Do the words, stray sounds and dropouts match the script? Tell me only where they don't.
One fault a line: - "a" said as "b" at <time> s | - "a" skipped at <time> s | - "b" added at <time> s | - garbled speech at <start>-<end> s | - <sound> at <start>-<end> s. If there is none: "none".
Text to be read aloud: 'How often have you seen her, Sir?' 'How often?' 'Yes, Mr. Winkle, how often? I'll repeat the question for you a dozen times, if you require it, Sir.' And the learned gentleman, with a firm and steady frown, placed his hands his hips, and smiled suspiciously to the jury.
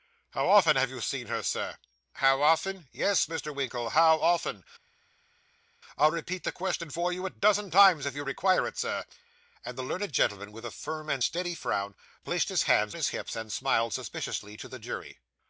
none